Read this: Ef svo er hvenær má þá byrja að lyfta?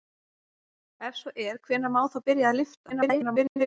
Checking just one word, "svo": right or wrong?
right